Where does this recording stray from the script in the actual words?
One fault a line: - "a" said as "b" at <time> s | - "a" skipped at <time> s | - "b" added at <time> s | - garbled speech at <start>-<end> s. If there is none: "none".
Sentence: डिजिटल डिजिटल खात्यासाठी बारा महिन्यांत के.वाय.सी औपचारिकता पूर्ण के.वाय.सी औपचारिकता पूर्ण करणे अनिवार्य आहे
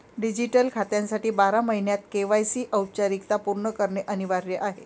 - "डिजिटल" skipped at 0.7 s
- "के.वाय.सी औपचारिकता पूर्ण" skipped at 3.7 s